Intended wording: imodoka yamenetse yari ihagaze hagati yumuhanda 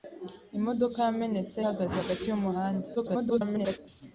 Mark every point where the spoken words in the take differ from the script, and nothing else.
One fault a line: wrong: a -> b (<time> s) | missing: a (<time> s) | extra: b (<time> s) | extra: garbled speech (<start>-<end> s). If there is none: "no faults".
missing: yari (1.6 s)
extra: garbled speech (3.0-3.8 s)